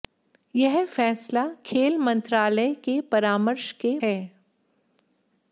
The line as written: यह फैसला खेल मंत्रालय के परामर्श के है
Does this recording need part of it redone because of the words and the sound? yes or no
no